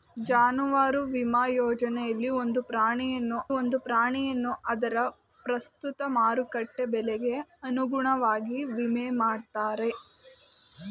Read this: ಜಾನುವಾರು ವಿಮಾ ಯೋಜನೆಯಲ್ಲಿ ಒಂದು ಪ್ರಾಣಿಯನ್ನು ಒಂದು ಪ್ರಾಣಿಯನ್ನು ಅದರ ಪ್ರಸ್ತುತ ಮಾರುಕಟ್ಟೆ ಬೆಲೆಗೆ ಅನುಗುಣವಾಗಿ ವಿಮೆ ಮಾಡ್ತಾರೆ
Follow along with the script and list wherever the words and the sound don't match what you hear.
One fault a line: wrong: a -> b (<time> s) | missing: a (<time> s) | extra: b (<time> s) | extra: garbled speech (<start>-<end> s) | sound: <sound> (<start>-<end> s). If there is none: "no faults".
no faults